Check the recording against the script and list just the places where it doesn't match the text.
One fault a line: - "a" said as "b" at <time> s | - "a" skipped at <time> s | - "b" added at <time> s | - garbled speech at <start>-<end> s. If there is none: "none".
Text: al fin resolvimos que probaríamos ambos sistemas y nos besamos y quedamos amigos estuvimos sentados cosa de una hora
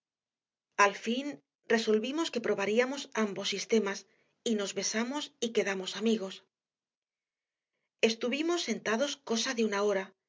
none